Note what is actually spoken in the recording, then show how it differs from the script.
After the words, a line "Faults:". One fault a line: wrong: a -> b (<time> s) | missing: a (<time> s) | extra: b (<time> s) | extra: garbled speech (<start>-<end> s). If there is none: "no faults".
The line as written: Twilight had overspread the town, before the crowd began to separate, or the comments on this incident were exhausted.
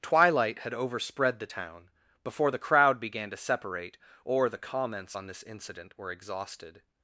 Twilight had overspread the town, before the crowd began to separate, or the comments on this incident were exhausted.
Faults:
no faults